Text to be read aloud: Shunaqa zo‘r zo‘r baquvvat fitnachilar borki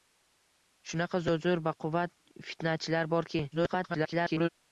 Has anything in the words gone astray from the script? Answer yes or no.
yes